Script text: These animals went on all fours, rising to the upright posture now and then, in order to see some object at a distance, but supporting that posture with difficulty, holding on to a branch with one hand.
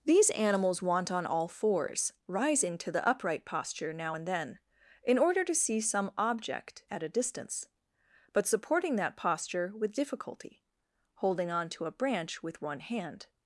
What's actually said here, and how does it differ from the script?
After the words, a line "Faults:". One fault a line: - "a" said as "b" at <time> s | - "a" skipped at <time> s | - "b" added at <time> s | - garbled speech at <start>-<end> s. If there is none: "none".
These animals want on all fours, rising to the upright posture now and then, in order to see some object at a distance, but supporting that posture with difficulty, holding on to a branch with one hand.
Faults:
- "went" said as "want" at 0.8 s